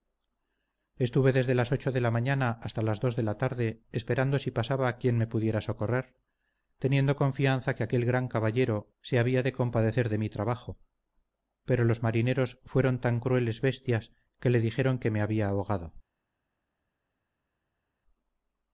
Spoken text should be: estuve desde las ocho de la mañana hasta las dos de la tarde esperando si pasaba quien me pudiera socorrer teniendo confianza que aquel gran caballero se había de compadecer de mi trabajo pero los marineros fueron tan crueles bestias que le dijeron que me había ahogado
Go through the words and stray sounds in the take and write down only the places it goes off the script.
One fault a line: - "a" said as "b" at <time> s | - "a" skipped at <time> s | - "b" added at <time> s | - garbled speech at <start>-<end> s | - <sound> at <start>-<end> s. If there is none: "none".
none